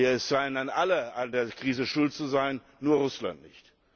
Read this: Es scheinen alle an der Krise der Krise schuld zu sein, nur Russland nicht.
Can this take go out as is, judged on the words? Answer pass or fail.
fail